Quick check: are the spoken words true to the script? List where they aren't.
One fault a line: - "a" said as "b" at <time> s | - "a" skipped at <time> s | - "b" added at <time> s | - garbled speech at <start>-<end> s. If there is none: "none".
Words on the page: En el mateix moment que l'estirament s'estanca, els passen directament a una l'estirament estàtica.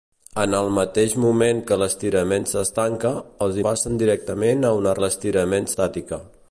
none